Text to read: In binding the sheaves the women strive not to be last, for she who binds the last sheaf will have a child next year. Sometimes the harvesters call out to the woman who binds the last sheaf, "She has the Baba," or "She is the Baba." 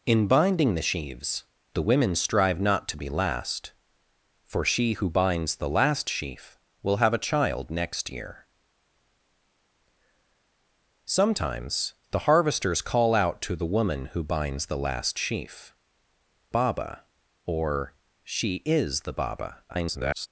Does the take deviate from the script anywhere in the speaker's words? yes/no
yes